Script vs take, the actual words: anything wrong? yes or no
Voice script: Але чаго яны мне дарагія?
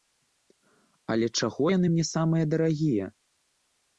yes